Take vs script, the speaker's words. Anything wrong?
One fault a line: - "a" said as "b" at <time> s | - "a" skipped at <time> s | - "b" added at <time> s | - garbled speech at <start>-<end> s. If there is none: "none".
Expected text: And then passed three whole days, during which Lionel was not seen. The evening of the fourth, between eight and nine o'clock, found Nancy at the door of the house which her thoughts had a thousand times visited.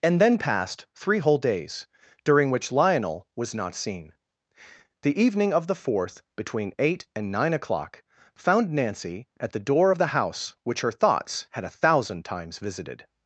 none